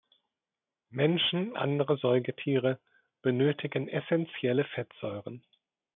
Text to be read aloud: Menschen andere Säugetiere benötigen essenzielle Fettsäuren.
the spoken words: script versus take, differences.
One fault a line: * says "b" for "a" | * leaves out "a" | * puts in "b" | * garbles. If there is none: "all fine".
all fine